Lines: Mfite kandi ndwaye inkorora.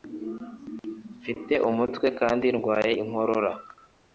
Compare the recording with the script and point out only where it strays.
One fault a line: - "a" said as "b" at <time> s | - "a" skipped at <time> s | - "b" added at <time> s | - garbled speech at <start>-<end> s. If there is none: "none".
- "umutwe" added at 1.7 s